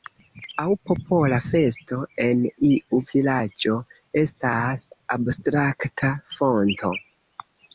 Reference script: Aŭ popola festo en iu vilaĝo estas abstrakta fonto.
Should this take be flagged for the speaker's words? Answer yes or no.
no